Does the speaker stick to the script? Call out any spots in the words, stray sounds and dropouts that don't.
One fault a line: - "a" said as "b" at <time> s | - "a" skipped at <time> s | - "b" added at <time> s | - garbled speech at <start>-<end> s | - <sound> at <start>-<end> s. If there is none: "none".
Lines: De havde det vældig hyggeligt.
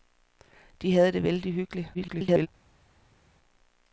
- garbled speech at 1.9-2.5 s